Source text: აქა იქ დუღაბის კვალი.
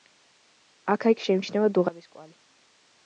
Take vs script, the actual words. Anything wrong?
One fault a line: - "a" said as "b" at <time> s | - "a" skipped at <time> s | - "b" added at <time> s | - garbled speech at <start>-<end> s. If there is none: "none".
- "შეიმჩნევა" added at 1.3 s